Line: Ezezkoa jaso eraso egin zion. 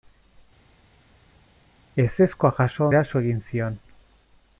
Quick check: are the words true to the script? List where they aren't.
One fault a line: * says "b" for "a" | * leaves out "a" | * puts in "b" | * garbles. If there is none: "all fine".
all fine